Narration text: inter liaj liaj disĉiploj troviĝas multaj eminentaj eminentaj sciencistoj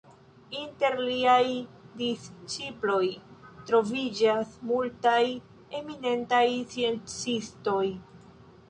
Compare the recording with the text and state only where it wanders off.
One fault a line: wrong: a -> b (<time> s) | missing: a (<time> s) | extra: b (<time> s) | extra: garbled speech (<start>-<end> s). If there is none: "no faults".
missing: liaj (1.4 s)
missing: eminentaj (6.5 s)